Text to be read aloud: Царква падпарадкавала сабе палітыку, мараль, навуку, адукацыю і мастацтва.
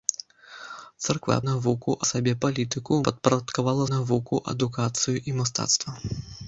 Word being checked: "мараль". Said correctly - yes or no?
no